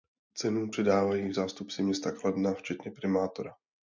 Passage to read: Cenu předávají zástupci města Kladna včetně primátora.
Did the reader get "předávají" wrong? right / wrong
right